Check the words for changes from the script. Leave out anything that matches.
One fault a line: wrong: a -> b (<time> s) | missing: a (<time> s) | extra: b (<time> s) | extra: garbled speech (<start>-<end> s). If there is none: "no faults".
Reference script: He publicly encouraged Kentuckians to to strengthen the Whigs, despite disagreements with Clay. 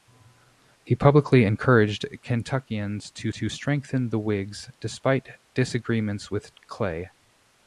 no faults